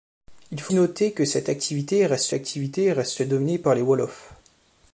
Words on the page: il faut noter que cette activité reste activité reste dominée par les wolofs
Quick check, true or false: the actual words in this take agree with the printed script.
true